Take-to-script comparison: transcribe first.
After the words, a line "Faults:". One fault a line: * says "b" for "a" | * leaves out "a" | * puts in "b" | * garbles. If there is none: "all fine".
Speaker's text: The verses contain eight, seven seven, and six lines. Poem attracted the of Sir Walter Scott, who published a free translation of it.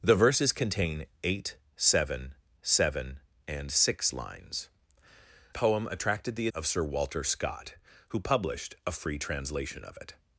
The verses contain eight, seven seven, and six lines. Poem attracted the of Sir Walter Scott, who published a free translation of it.
Faults:
all fine